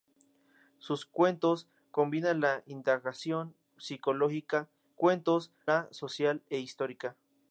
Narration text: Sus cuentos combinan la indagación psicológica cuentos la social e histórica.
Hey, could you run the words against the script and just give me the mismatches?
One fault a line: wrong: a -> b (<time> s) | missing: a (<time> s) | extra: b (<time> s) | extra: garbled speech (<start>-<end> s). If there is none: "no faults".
no faults